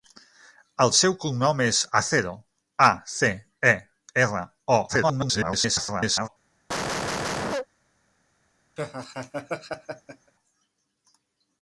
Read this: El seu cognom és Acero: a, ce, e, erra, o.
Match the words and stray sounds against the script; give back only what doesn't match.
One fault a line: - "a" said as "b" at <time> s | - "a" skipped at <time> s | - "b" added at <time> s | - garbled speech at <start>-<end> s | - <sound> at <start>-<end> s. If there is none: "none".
- garbled speech at 4.9-6.3 s
- cough at 6.7-7.7 s
- laugh at 8.8-10.3 s